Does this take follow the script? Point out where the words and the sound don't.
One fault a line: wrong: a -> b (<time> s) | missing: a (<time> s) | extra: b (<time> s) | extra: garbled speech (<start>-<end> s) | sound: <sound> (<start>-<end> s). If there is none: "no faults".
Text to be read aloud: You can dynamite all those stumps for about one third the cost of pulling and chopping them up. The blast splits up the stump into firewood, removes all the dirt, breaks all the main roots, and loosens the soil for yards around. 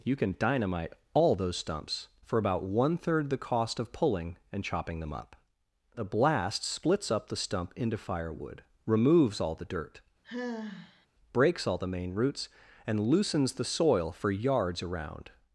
sound: sigh (10.2-11.1 s)